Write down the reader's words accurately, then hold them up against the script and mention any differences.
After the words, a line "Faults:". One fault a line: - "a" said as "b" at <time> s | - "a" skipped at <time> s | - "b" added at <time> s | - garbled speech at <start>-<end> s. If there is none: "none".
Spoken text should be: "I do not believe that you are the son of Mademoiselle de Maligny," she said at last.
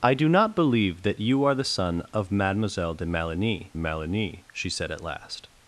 "I do not believe that you are the son of Mademoiselle de Maligny Maligny," she said at last.
Faults:
- "Maligny" added at 3.8 s